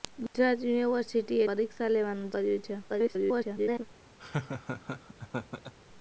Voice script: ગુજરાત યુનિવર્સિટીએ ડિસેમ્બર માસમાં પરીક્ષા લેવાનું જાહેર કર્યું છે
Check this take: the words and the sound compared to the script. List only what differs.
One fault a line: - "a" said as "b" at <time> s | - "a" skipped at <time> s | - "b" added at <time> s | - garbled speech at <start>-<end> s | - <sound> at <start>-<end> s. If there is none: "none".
- "ડિસેમ્બર માસમાં" skipped at 1.4 s
- "જાહેર" skipped at 2.3 s
- garbled speech at 2.9-3.9 s
- laugh at 4.2-5.7 s